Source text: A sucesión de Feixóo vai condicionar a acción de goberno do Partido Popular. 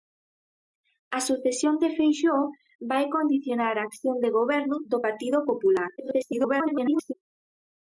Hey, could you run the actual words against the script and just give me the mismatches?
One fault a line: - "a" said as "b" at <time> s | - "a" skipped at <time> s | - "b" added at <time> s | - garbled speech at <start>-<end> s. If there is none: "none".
- garbled speech at 6.0-7.1 s